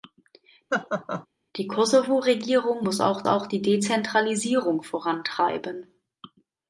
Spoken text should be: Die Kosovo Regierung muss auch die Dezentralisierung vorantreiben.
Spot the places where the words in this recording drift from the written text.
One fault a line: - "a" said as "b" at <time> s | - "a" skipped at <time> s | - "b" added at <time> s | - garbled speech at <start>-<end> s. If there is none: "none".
- "auch" added at 3.3 s